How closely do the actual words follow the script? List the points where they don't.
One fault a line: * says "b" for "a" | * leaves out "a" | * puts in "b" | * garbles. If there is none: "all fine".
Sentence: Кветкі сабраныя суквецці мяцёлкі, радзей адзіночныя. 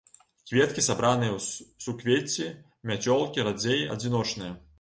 * puts in "ў"